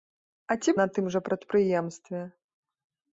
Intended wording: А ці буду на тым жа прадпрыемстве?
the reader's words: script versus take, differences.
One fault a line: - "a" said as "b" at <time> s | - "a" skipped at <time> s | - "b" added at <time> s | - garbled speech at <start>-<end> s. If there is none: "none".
- "буду" skipped at 0.7 s